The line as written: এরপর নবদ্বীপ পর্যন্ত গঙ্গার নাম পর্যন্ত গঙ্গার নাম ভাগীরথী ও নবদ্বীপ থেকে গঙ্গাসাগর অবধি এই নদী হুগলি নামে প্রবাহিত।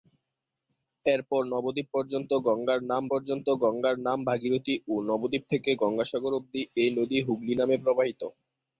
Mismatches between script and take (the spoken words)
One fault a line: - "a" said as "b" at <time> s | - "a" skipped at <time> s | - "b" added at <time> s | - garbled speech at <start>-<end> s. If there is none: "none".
none